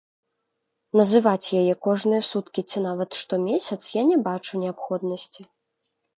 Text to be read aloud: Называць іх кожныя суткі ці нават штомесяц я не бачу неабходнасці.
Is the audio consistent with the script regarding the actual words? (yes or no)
no